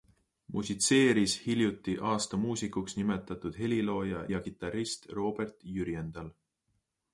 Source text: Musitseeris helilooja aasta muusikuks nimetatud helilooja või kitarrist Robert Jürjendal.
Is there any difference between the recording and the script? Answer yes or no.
yes